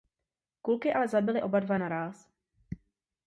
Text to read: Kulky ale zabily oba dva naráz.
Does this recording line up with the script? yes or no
yes